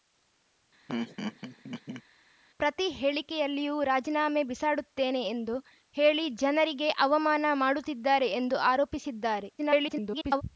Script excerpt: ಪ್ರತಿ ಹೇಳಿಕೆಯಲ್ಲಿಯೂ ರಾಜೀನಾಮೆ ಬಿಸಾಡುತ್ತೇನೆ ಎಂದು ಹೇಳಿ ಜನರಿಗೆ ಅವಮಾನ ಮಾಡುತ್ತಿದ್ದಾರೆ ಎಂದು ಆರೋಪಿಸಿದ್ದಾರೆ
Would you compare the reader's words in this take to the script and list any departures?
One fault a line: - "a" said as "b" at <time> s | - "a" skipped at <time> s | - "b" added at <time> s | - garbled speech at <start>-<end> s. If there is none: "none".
- garbled speech at 9.6-10.4 s